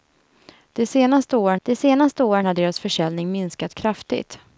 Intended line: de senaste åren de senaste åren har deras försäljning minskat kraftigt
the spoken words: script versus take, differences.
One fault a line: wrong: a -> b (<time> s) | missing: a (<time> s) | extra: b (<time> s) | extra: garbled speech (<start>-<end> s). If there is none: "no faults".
no faults